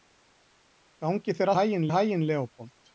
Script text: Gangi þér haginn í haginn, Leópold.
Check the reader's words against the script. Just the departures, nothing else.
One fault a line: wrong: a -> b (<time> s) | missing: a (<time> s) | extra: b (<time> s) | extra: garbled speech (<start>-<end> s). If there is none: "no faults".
no faults